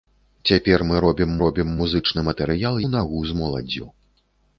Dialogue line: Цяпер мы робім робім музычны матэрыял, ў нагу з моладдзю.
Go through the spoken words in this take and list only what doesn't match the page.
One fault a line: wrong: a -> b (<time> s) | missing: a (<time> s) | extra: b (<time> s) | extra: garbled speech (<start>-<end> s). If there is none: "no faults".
no faults